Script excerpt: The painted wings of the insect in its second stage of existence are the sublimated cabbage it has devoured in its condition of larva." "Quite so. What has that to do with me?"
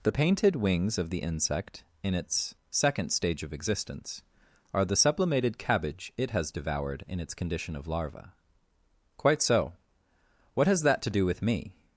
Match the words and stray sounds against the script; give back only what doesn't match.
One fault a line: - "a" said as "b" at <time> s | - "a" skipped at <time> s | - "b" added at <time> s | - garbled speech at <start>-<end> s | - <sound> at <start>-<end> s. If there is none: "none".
none